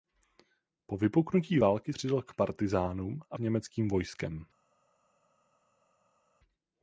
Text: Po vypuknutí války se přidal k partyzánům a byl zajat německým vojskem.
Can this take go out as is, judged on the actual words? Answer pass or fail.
fail